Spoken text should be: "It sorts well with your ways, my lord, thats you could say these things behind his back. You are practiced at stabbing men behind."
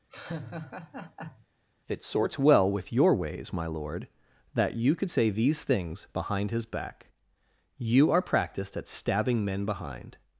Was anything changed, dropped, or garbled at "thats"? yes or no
yes